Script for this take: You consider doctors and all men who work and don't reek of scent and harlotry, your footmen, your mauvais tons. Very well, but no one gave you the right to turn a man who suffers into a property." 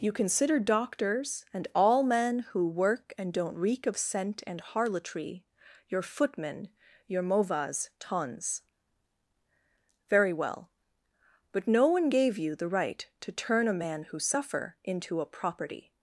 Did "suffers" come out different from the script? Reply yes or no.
yes